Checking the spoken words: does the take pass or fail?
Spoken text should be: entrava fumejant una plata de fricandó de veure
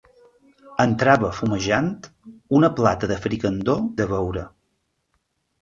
pass